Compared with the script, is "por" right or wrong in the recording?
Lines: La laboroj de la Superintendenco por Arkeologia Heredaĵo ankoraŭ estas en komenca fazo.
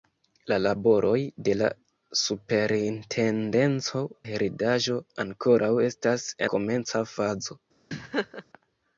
wrong